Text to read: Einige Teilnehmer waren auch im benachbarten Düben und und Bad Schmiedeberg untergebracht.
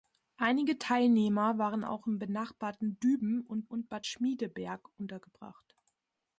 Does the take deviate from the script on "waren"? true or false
false